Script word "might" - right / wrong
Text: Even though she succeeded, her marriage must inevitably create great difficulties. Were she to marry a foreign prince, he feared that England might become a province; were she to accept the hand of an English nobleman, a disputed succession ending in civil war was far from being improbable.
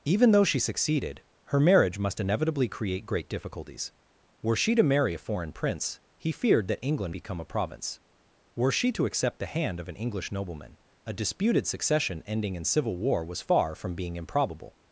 wrong